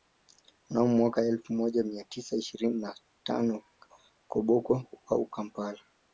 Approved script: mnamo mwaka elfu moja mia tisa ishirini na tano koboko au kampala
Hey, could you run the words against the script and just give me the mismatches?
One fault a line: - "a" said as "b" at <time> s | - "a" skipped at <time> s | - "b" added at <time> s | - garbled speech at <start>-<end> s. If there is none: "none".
none